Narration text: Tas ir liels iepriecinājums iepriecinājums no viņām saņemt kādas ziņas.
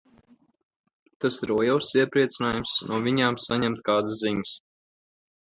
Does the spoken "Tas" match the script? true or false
true